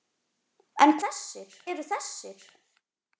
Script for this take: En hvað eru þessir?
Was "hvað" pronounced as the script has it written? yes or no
no